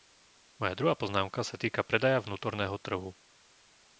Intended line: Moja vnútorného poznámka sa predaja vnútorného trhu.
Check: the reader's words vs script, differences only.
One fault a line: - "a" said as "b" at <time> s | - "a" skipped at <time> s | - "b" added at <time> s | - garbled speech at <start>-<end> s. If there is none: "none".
- "vnútorného" said as "druhá" at 0.7 s
- "týka" added at 1.6 s